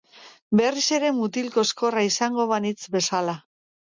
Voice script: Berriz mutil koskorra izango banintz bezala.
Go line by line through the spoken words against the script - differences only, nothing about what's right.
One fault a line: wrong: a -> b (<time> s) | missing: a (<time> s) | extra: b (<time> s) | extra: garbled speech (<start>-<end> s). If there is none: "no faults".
extra: ere (0.9 s)